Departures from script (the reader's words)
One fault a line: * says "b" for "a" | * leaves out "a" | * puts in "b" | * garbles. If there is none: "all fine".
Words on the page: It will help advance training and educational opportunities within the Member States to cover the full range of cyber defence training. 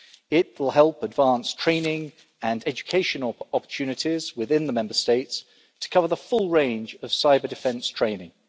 all fine